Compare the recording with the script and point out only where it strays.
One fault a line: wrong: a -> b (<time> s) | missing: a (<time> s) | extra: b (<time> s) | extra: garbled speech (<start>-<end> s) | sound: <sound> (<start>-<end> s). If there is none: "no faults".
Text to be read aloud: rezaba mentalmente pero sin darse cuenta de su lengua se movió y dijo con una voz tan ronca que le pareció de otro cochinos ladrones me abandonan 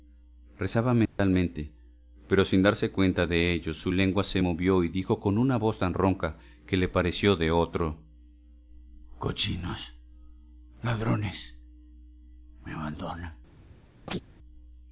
sound: dropout (1.1-1.2 s)
extra: ello (3.5 s)
sound: chirp (14.1-14.2 s)